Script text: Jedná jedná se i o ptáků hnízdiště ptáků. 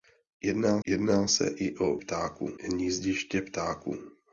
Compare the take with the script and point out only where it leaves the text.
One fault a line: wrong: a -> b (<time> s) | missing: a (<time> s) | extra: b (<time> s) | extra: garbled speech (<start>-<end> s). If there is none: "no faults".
no faults